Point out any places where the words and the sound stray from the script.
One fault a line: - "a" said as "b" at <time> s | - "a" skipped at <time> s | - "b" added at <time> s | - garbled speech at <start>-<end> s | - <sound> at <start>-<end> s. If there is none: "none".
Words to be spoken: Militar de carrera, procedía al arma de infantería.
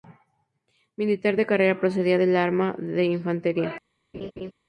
- "al" said as "del" at 2.2 s
- laugh at 4.1-4.5 s